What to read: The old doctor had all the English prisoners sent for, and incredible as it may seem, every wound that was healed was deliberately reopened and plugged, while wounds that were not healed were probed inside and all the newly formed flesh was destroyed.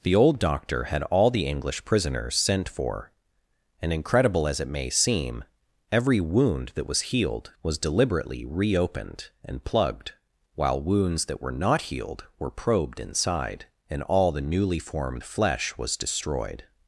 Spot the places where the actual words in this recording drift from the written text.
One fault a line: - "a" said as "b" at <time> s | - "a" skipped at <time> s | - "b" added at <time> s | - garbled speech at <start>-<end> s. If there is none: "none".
none